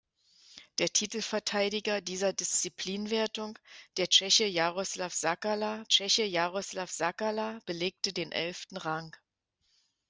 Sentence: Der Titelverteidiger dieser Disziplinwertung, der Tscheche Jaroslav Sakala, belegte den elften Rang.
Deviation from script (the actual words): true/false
true